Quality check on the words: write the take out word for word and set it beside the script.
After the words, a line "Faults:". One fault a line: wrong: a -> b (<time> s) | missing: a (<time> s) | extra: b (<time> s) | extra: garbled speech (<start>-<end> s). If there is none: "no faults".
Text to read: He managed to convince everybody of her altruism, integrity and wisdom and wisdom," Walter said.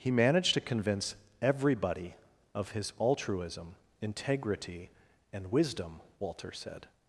He managed to convince everybody of his altruism, integrity and wisdom," Walter said.
Faults:
wrong: her -> his (2.7 s)
missing: and wisdom (6.0 s)